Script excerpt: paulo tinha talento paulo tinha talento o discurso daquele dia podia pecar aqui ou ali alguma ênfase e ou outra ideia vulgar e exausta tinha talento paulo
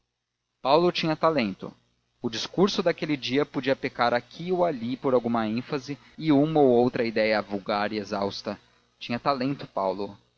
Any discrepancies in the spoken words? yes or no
yes